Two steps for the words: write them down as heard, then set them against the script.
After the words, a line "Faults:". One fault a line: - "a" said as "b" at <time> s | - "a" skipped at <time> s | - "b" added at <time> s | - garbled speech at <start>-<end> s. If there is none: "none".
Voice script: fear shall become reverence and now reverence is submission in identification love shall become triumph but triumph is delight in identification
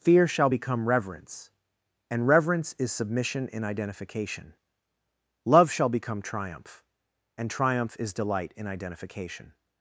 fear shall become reverence and reverence is submission in identification love shall become triumph and triumph is delight in identification
Faults:
- "now" skipped at 2.2 s
- "but" said as "and" at 7.3 s